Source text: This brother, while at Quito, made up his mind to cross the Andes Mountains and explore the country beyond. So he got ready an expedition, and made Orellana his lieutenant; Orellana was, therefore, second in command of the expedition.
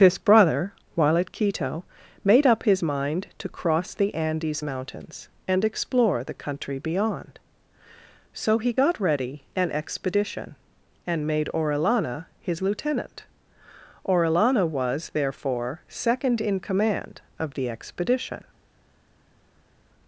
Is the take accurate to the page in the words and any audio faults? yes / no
yes